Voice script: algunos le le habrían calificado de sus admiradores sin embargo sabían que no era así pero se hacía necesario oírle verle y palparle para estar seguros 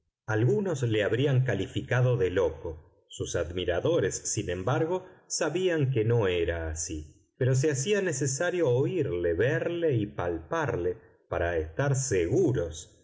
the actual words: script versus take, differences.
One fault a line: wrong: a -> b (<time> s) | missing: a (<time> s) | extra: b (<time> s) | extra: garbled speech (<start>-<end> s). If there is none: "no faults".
missing: le (1.0 s)
extra: loco (2.3 s)